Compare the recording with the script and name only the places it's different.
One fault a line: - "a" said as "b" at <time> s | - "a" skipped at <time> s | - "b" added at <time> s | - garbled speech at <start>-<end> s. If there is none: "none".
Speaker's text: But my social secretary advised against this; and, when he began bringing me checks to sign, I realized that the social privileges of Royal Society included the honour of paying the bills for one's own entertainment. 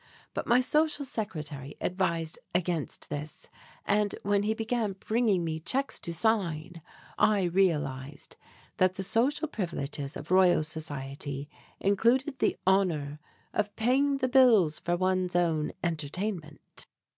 none